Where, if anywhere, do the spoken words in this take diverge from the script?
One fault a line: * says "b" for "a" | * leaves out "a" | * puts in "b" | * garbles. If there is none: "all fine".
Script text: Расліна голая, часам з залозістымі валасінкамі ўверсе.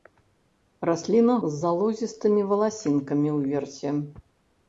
* leaves out "голая часам"